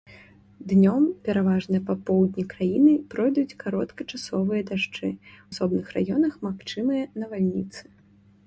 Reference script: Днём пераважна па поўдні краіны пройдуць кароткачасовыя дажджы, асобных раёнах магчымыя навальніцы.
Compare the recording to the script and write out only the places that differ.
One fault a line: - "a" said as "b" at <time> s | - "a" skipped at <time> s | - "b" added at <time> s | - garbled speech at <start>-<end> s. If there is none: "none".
none